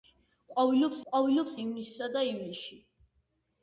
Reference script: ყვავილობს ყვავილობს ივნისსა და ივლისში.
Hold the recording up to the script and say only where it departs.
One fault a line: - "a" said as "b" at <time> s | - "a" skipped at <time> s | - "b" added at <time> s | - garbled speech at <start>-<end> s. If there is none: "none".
none